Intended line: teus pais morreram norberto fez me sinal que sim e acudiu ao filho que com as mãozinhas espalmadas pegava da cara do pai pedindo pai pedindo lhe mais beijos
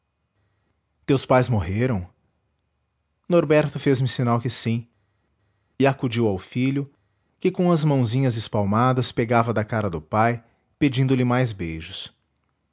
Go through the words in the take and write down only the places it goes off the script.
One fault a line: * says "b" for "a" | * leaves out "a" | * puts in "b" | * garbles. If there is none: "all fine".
* leaves out "pai pedindo"